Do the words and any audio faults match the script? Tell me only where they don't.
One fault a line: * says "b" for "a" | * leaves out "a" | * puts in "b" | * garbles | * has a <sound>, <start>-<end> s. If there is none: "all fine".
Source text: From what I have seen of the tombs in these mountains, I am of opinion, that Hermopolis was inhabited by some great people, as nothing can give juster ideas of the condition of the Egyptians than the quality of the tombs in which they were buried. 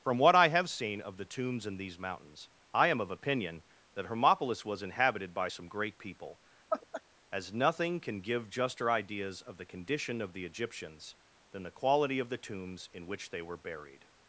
* has a laugh, 6.7-7.0 s